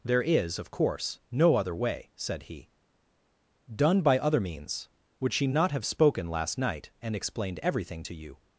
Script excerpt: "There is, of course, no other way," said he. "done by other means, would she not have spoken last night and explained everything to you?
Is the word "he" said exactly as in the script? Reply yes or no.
yes